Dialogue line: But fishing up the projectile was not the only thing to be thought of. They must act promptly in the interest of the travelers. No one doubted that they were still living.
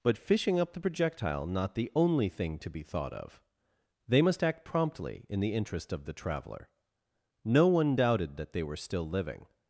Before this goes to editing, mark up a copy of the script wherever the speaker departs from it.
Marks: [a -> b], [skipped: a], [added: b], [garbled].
But fishing up the projectile [skipped: was] not the only thing to be thought of. They must act promptly in the interest of the [travelers. -> traveler] No one doubted that they were still living.